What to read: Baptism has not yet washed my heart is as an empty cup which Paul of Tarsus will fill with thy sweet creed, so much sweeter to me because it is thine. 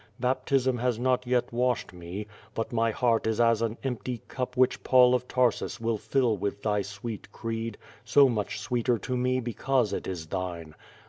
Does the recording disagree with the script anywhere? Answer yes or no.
yes